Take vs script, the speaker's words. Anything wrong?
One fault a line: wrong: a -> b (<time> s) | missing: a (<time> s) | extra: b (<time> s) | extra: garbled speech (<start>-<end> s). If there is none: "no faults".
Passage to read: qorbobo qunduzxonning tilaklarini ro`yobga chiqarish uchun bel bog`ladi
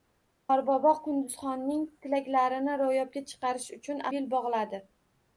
no faults